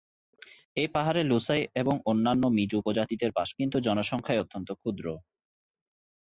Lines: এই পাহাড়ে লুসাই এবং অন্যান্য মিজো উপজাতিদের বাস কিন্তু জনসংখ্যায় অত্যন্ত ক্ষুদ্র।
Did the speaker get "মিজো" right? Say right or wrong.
right